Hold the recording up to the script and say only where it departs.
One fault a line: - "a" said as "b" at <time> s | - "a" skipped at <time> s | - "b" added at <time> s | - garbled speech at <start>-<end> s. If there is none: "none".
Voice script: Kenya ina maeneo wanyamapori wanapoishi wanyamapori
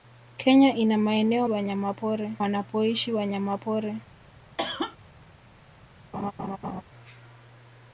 none